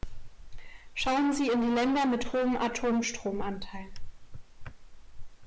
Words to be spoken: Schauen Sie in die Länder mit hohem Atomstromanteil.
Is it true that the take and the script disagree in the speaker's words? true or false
false